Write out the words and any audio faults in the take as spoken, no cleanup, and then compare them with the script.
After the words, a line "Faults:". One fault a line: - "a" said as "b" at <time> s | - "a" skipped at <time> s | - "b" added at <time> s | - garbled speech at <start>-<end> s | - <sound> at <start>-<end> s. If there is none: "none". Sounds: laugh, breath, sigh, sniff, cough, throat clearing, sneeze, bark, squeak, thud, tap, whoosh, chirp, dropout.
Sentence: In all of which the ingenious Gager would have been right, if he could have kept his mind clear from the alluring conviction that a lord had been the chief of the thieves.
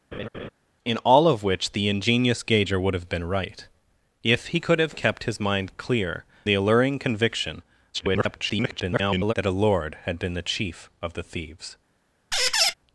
In all of which the ingenious Gager would have been right, if he could have kept his mind clear the alluring conviction [garbled] that a lord had been the chief of the thieves.
Faults:
- laugh at 0.1-0.5 s
- "from" skipped at 6.2 s
- garbled speech at 7.9-9.3 s
- squeak at 12.3-12.7 s